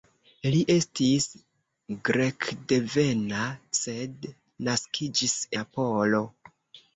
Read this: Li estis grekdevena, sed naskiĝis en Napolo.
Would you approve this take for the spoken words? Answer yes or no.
no